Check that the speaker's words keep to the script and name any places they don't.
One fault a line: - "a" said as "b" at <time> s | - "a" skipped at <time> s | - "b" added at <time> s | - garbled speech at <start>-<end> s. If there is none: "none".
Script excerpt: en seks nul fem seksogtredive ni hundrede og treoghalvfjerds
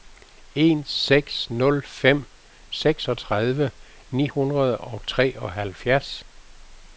none